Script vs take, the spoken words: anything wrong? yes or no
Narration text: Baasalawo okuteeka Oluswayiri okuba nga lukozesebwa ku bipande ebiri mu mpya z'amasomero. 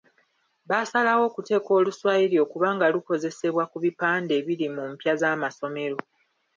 no